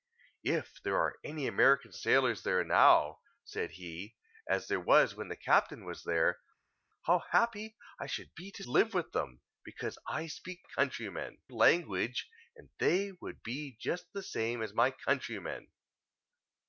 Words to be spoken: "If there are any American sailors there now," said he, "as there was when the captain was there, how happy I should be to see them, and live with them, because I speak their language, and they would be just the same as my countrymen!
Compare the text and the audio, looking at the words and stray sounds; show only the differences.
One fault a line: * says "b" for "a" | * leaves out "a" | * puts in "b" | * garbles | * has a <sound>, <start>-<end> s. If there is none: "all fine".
* leaves out "see them and"
* says "countrymen" for "their"